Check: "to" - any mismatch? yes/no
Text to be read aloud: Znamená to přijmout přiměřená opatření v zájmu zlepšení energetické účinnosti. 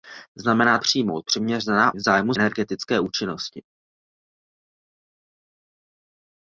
yes